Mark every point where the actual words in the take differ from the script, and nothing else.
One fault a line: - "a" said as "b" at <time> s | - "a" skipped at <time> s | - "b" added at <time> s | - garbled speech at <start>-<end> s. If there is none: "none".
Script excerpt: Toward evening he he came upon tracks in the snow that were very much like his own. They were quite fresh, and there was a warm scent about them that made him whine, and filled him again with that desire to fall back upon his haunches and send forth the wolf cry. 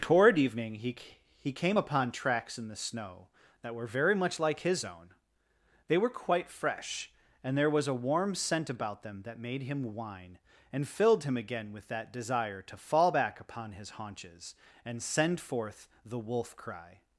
none